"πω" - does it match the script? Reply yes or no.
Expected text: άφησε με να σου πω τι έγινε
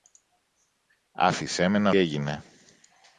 no